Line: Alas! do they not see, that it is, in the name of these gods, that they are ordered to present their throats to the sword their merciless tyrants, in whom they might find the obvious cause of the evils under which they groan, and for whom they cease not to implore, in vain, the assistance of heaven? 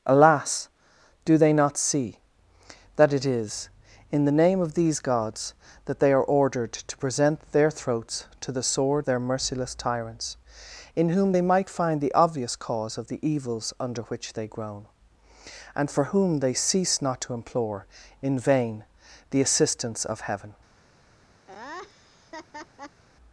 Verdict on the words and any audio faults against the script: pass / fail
fail